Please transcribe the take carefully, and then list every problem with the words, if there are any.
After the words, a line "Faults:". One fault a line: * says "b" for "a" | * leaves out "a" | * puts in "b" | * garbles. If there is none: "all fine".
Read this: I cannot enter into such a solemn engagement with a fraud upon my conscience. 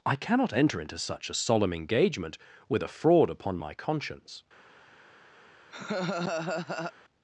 I cannot enter into such a solemn engagement with a fraud upon my conscience.
Faults:
all fine